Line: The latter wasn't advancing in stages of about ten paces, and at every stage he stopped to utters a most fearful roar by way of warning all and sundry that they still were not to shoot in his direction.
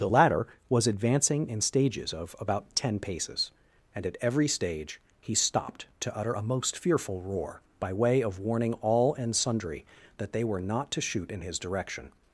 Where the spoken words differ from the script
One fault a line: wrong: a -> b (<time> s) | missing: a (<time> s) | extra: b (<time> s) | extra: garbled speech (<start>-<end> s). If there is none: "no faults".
wrong: wasn't -> was (0.7 s)
wrong: utters -> utter (6.2 s)
missing: still (10.4 s)